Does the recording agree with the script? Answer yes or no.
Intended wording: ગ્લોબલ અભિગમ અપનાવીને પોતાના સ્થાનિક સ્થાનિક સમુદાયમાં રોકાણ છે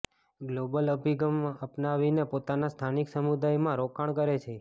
no